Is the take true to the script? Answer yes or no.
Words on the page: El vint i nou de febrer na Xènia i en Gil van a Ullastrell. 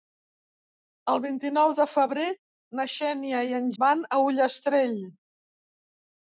no